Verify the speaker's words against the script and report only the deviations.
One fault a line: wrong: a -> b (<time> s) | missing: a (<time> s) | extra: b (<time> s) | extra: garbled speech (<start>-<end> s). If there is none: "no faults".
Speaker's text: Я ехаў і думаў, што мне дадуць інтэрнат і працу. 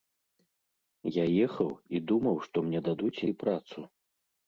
missing: інтэрнат (3.2 s)